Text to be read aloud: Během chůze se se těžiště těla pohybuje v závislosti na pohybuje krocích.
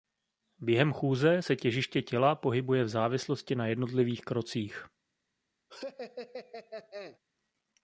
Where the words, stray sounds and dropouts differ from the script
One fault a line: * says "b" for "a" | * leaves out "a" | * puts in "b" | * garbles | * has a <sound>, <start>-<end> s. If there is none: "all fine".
* leaves out "se"
* says "jednotlivých" for "pohybuje"
* has a laugh, 5.7-7.2 s